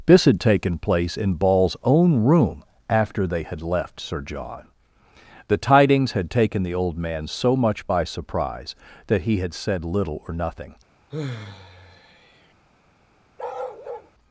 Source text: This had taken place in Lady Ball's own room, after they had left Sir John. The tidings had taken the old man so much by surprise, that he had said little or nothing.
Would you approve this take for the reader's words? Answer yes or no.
no